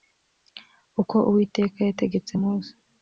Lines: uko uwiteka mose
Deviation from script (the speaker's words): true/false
true